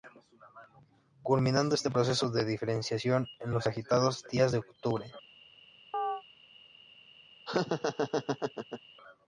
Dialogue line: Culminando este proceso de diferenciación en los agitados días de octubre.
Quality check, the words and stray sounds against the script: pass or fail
fail